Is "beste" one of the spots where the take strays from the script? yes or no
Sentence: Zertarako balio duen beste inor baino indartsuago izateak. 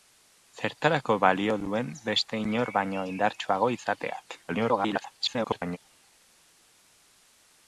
no